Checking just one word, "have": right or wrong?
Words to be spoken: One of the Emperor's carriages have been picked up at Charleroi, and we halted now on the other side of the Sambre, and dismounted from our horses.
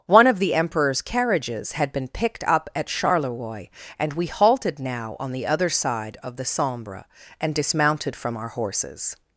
wrong